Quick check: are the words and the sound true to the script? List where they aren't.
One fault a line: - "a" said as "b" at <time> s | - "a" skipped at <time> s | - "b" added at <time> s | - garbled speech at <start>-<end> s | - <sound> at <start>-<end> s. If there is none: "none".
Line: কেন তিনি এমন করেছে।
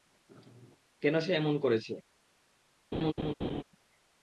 - "তিনি" said as "সে" at 1.2 s
- laugh at 2.9-3.6 s